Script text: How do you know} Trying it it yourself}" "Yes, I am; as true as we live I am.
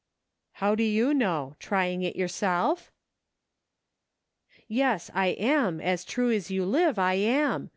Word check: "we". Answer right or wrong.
wrong